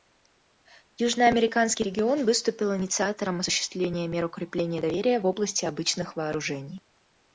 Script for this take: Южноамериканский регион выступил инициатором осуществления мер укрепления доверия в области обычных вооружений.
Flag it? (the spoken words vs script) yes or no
no